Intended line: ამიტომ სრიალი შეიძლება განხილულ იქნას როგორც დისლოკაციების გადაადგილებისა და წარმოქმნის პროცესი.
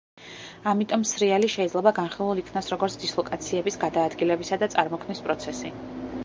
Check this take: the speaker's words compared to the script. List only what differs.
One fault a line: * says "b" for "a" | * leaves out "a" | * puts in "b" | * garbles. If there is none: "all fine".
all fine